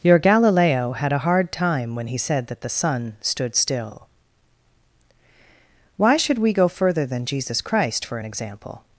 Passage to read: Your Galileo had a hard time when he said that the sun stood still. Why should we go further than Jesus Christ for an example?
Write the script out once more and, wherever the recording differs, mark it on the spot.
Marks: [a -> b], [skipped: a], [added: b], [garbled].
Your Galileo had a hard time when he said that the sun stood still. Why should we go further than Jesus Christ for an example?